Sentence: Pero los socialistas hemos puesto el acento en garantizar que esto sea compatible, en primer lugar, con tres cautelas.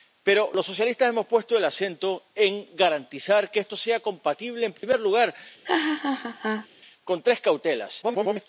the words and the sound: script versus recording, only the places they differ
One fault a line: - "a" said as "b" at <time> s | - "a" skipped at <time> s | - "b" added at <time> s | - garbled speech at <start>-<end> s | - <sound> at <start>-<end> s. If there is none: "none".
- dropout at 4.8-4.8 s
- laugh at 5.6-6.7 s
- garbled speech at 8.0-8.5 s